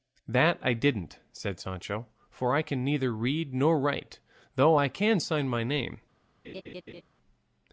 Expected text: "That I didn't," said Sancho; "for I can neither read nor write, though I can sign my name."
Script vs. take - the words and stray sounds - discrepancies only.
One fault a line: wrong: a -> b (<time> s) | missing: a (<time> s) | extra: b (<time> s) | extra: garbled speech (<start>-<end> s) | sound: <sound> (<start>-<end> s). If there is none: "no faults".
sound: laugh (6.4-7.0 s)